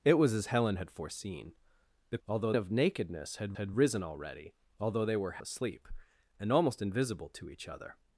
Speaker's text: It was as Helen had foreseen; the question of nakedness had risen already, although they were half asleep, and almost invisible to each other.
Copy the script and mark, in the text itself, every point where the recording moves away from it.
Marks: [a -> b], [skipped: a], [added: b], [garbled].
It was as Helen had foreseen; the [question -> although] of nakedness had [added: had] risen already, although they were [skipped: half] asleep, and almost invisible to each other.